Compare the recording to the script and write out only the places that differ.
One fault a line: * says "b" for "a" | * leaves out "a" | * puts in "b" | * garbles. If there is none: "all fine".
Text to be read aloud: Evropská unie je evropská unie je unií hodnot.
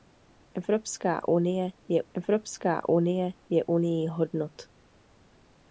all fine